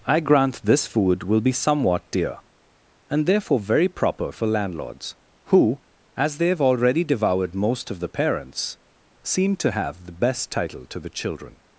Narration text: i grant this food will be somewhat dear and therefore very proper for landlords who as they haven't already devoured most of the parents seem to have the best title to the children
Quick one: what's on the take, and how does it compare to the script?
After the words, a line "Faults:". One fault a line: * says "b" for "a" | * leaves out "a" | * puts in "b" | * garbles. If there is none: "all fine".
i grant this food will be somewhat dear and therefore very proper for landlords who as they have already devoured most of the parents seem to have the best title to the children
Faults:
* says "have" for "haven't"